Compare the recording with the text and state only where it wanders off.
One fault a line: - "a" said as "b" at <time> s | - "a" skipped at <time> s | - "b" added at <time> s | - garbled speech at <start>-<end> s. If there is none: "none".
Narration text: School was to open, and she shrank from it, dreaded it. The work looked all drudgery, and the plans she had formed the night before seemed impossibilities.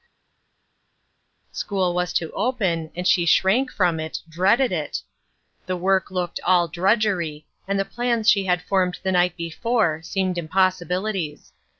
none